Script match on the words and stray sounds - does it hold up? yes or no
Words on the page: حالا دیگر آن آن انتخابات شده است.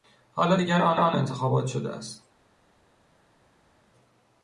yes